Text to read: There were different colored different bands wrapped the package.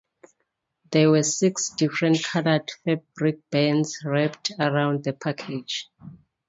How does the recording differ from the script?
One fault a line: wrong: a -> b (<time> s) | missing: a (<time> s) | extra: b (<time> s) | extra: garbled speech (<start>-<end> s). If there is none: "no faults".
extra: six (1.2 s)
wrong: different -> fabric (2.8 s)
extra: around (4.6 s)